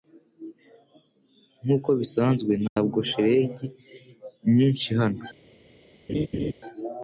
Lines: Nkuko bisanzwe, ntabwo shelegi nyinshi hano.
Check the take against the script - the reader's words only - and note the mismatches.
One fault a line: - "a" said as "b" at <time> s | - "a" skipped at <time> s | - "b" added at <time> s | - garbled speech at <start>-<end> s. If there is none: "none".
none